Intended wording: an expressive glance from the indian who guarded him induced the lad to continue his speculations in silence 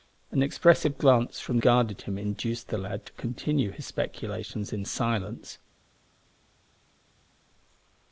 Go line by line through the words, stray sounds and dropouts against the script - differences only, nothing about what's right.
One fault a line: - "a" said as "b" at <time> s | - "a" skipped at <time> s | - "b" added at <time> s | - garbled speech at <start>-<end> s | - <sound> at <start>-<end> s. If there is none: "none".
- "the indian who" skipped at 1.6 s